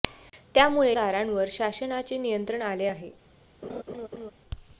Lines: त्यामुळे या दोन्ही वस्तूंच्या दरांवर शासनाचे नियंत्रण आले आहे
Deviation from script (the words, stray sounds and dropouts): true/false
true